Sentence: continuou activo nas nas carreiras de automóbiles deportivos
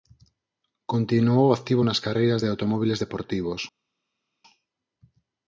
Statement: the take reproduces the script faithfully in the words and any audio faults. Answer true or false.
false